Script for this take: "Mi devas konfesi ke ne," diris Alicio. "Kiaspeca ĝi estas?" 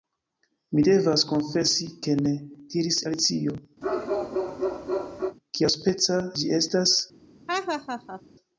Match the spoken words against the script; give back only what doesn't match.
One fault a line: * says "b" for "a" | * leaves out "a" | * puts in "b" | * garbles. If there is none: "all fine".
all fine